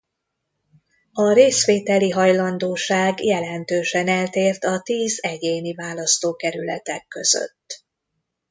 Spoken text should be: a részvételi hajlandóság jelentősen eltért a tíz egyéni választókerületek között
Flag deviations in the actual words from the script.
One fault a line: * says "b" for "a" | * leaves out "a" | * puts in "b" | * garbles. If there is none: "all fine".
all fine